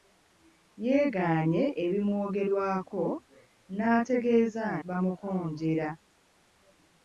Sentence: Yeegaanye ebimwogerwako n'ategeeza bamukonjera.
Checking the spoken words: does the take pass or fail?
pass